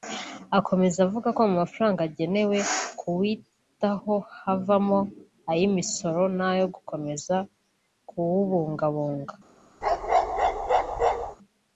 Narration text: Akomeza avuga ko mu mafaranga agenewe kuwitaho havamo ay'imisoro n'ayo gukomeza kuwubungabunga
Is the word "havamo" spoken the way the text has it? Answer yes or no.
yes